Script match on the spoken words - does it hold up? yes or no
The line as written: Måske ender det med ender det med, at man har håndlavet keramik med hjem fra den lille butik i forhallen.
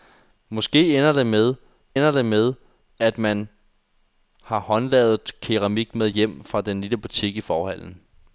yes